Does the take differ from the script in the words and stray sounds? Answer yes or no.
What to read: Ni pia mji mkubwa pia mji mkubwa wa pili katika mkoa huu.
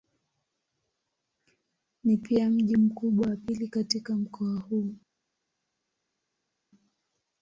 yes